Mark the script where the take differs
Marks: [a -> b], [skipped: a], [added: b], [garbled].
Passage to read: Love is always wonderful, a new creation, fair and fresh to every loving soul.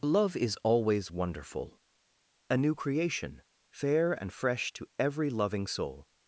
Love is always wonderful, a new creation, fair and fresh to every loving soul.